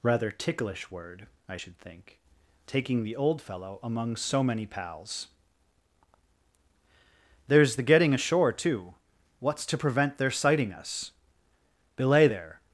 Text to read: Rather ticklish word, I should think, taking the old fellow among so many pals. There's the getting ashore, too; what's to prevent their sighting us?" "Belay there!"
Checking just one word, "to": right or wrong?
right